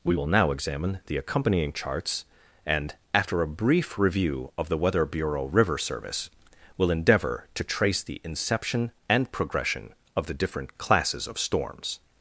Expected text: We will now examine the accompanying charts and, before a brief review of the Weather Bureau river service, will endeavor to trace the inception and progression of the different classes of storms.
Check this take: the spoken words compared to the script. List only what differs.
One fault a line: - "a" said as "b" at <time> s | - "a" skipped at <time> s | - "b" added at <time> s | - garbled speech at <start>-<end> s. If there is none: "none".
- "before" said as "after" at 3.1 s